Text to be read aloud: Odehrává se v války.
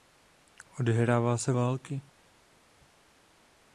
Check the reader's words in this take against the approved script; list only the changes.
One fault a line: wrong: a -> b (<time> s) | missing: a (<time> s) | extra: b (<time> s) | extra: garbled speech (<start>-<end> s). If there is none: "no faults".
no faults